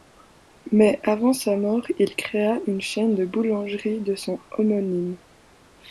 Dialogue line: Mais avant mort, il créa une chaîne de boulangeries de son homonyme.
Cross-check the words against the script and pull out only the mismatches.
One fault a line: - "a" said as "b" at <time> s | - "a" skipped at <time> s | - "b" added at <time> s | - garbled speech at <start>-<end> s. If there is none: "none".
- "sa" added at 1.3 s